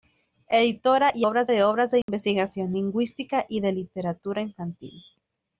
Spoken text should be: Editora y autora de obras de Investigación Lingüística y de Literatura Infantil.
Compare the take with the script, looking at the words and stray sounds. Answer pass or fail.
fail